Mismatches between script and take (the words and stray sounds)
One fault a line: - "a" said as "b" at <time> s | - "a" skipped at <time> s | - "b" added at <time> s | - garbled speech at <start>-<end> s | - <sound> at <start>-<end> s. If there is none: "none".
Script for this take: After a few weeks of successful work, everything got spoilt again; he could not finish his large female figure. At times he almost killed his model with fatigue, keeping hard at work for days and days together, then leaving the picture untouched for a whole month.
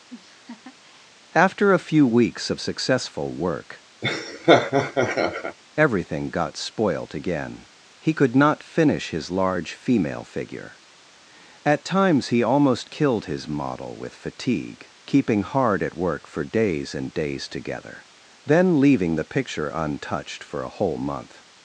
- laugh at 0.1-1.1 s
- laugh at 4.0-5.6 s